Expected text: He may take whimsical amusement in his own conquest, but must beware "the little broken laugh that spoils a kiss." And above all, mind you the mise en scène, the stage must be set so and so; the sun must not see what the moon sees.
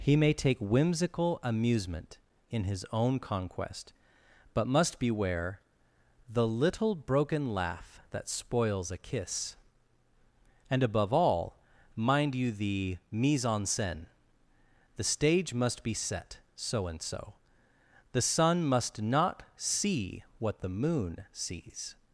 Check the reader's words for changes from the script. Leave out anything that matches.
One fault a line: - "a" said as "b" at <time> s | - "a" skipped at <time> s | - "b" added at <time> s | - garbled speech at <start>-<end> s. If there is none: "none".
none